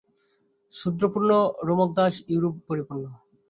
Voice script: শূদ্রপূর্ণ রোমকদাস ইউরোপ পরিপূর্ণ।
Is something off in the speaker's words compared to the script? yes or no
no